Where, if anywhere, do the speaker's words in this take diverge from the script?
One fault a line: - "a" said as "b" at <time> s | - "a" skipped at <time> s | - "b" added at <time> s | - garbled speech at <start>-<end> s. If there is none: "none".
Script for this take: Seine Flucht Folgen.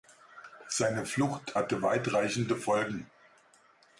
- "hatte weitreichende" added at 1.5 s